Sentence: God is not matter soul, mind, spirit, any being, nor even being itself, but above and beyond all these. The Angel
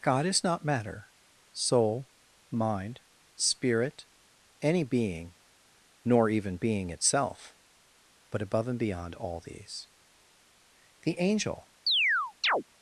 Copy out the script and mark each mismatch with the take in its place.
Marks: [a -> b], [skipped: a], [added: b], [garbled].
God is not matter soul, mind, spirit, any being, nor even being itself, but above and beyond all these. The Angel